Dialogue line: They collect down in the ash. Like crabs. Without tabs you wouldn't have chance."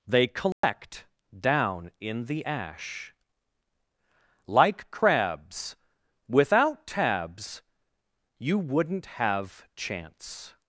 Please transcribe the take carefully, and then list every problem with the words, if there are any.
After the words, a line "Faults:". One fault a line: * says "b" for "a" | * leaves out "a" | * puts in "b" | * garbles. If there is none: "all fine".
They collect down in the ash. Like crabs. Without tabs you wouldn't have chance."
Faults:
all fine